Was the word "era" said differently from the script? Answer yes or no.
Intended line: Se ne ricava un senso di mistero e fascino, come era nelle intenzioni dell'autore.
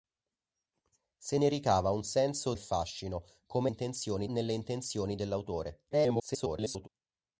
yes